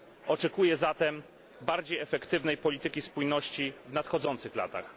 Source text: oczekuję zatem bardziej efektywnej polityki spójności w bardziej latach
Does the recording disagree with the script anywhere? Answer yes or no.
yes